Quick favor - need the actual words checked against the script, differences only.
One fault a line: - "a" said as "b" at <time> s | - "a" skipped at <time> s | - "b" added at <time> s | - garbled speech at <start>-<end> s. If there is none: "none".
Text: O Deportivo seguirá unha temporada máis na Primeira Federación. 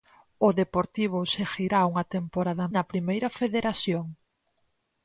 - "máis" skipped at 2.6 s